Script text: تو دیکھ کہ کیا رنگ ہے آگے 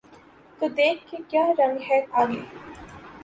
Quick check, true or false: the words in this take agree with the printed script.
true